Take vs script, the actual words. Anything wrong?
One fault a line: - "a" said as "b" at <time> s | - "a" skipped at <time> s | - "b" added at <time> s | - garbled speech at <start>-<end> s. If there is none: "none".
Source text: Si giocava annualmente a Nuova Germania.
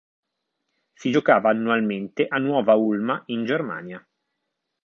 - "Ulma in" added at 2.7 s